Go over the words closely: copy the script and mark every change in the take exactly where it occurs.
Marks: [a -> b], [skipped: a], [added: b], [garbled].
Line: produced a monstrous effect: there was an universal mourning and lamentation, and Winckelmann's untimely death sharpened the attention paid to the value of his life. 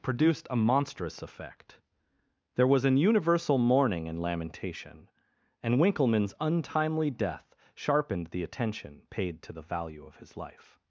produced a monstrous effect: there was an universal mourning and lamentation, and Winckelmann's untimely death sharpened the attention paid to the value of his life.